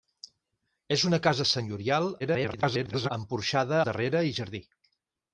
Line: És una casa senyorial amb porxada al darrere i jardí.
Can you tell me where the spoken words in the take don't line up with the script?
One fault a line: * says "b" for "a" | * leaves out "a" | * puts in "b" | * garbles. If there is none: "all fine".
* garbles
* leaves out "al"